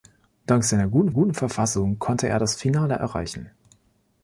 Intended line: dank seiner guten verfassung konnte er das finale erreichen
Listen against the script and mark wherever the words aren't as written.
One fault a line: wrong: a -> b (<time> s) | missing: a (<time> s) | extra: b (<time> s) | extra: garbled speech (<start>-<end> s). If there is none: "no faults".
extra: guten (1.1 s)